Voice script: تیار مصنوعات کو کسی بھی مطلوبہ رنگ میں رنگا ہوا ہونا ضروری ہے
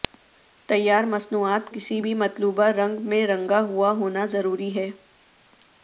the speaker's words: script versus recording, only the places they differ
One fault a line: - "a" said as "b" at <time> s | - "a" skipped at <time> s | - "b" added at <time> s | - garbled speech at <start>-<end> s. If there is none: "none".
- "کو" skipped at 1.7 s